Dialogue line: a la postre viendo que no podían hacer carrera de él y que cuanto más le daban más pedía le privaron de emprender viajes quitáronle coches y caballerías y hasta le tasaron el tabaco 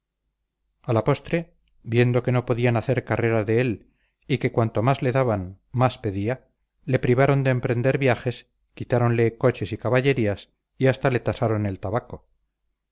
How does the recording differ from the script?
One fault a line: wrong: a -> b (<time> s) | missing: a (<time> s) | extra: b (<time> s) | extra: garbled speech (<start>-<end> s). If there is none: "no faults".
no faults